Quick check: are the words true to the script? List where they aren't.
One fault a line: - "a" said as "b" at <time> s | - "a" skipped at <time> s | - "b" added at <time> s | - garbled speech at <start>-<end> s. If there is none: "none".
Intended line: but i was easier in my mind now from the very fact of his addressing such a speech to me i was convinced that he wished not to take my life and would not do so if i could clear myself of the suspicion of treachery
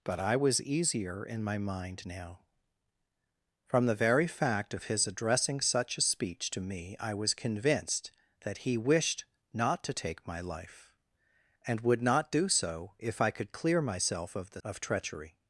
- "suspicion" skipped at 14.6 s